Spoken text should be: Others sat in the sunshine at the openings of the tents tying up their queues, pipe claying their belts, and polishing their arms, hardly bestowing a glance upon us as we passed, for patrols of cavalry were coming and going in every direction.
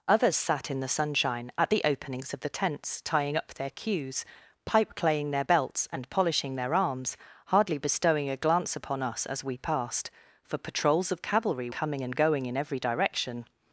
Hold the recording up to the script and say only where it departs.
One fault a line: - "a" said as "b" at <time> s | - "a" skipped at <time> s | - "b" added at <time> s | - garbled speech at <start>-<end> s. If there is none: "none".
- "were" skipped at 11.7 s